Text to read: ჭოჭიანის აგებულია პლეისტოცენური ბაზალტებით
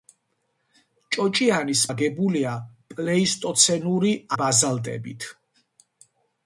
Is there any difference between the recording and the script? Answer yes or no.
no